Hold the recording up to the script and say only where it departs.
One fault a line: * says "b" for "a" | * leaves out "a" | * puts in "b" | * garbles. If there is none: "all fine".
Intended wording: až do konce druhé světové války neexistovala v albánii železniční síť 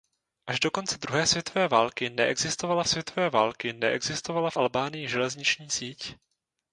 * puts in "světové války neexistovala"